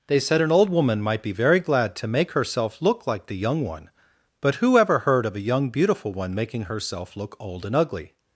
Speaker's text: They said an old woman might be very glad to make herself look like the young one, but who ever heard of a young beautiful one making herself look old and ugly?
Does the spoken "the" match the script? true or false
true